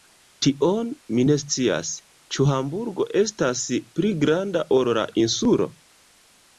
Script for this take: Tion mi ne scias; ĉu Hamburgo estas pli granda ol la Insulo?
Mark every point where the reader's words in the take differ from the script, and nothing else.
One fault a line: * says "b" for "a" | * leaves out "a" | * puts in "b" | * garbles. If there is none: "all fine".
all fine